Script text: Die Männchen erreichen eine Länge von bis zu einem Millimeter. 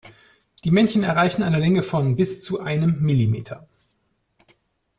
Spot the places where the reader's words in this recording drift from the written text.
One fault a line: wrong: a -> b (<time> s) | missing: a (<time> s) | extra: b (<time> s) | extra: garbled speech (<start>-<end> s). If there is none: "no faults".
no faults